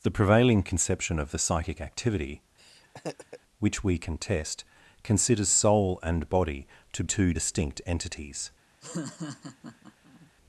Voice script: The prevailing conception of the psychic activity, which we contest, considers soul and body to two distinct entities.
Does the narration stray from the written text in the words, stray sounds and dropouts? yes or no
yes